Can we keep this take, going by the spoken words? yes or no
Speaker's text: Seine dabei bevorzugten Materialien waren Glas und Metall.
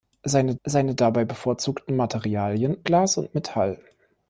no